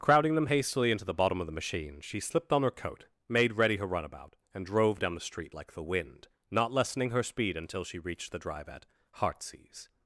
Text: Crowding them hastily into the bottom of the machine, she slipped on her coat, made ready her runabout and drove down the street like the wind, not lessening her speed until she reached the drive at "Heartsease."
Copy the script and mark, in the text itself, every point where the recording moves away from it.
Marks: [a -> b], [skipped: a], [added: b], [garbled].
Crowding them hastily into the bottom of the machine, she slipped on her coat, made ready her runabout and drove down the street like the wind, not lessening her speed until she reached the drive at "Heartsease."